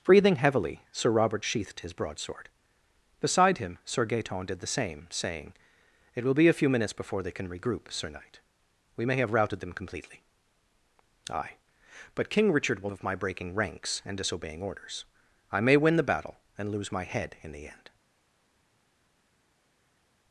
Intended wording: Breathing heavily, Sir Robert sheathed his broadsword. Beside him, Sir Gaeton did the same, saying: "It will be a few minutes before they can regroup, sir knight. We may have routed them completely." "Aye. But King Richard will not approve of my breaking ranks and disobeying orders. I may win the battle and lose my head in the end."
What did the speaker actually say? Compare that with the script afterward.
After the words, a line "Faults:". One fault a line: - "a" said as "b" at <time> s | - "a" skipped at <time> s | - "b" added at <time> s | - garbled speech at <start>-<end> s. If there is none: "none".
Breathing heavily, Sir Robert sheathed his broadsword. Beside him, Sir Gaeton did the same, saying: "It will be a few minutes before they can regroup, sir knight. We may have routed them completely." "Aye. But King Richard will of my breaking ranks and disobeying orders. I may win the battle and lose my head in the end."
Faults:
- "not approve" skipped at 12.9 s